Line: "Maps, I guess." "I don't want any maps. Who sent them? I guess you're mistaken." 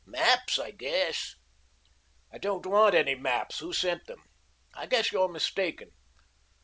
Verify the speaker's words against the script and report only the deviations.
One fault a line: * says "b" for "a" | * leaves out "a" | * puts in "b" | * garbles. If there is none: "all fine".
all fine